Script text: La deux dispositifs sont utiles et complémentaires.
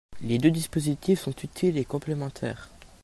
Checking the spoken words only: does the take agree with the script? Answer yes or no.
no